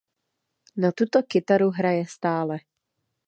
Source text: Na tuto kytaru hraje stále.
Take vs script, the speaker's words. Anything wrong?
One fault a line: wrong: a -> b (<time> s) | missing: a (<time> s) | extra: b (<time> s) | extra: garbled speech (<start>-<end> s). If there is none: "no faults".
no faults